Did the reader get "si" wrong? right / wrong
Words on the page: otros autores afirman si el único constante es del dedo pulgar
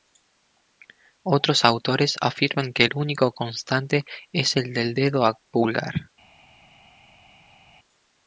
wrong